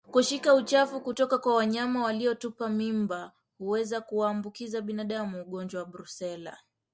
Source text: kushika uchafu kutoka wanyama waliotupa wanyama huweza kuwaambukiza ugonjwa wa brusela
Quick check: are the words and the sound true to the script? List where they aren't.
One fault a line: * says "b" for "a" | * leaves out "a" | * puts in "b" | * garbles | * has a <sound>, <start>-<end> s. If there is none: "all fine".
* puts in "kwa"
* says "mimba" for "wanyama"
* puts in "binadamu"